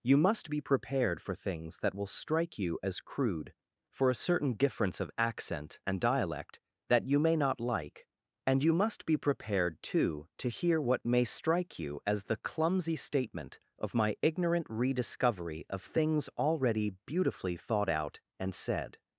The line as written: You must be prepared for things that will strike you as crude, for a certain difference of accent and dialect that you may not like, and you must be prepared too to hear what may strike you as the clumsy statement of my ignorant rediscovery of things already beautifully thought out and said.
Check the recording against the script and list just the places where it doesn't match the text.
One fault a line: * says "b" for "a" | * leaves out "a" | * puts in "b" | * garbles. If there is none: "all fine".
all fine